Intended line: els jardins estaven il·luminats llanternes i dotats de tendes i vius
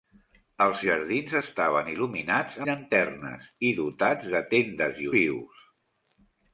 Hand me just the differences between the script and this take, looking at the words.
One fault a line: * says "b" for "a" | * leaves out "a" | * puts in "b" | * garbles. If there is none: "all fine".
all fine